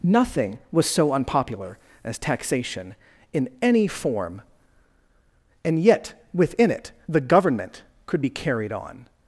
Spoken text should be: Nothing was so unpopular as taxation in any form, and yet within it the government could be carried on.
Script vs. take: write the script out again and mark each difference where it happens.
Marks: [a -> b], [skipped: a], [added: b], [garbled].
Nothing was so unpopular as taxation in any form, and yet within it the government could be carried on.